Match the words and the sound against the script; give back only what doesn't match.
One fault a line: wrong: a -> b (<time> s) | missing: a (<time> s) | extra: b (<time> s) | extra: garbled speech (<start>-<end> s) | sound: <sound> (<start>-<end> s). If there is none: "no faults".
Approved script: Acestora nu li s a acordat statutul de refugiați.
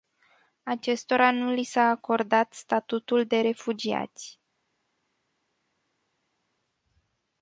no faults